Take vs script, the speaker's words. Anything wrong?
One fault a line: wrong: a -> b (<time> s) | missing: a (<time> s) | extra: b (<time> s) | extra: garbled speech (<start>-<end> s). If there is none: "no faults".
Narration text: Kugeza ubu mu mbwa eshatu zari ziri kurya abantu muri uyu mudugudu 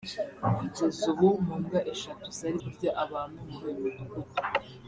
missing: ziri (2.6 s)